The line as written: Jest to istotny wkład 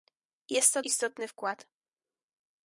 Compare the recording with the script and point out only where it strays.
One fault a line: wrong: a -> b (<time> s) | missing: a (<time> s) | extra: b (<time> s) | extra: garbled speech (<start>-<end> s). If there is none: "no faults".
no faults